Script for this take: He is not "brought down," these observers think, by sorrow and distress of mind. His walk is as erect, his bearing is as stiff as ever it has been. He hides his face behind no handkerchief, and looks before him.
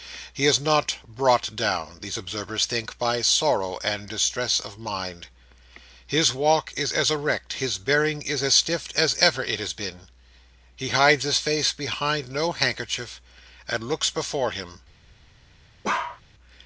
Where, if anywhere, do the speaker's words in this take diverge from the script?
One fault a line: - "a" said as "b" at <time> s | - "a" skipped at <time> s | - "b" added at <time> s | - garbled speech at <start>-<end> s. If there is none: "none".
none